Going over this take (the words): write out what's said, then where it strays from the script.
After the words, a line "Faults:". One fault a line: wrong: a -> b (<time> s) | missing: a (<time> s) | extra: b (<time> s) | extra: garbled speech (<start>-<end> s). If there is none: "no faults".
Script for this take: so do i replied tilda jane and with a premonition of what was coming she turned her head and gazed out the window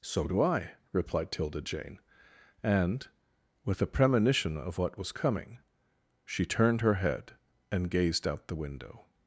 so do i replied tilda jane and with a premonition of what was coming she turned her head and gazed out the window
Faults:
no faults